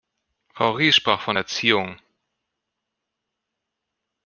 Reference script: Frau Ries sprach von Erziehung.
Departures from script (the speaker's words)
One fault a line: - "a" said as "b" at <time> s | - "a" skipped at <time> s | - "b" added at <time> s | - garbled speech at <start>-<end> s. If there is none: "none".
none